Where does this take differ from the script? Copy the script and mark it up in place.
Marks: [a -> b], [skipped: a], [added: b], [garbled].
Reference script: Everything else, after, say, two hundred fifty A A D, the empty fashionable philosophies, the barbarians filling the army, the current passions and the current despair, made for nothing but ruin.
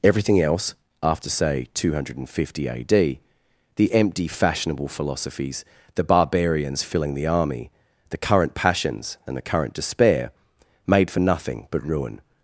Everything else, after, say, two hundred fifty A [skipped: A] D, the empty fashionable philosophies, the barbarians filling the army, the current passions and the current despair, made for nothing but ruin.